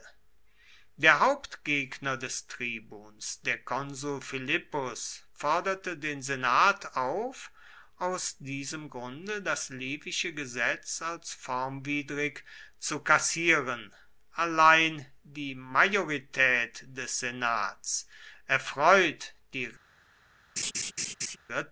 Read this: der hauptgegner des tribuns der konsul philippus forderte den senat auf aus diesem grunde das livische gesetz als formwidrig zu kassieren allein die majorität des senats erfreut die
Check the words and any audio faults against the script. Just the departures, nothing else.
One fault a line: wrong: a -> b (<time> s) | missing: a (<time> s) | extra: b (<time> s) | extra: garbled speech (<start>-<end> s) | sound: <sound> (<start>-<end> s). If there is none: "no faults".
sound: laugh (20.6-21.4 s)